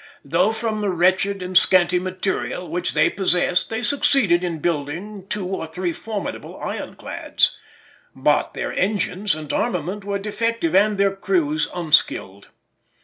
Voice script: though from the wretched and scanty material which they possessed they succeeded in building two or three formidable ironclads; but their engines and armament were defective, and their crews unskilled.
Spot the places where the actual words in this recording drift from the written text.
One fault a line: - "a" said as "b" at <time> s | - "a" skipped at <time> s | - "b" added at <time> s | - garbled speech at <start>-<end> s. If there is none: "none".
none